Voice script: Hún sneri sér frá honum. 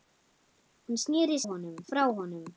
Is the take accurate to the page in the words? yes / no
no